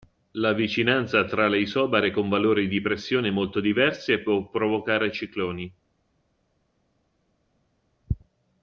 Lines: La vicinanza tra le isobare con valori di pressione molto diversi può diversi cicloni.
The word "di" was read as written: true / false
true